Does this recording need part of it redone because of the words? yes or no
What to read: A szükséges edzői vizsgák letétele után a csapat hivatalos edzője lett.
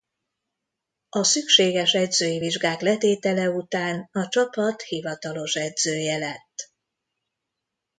no